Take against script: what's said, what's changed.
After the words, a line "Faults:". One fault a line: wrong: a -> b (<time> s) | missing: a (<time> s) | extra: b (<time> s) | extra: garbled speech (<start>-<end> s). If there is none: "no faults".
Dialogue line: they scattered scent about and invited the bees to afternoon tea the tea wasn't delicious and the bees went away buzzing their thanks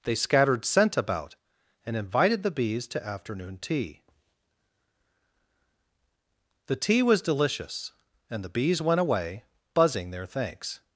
they scattered scent about and invited the bees to afternoon tea the tea was delicious and the bees went away buzzing their thanks
Faults:
wrong: wasn't -> was (7.0 s)